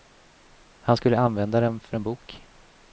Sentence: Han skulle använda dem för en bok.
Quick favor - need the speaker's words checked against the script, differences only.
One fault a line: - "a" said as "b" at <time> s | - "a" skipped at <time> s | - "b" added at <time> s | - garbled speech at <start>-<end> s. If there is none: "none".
none